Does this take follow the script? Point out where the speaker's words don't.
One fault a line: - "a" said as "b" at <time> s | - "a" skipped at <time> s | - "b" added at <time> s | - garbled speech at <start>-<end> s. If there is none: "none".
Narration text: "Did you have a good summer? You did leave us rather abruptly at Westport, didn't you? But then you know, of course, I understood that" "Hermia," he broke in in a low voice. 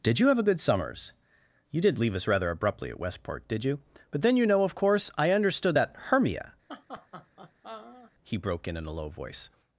- "summer" said as "summers" at 0.6 s
- "didn't" said as "did" at 3.5 s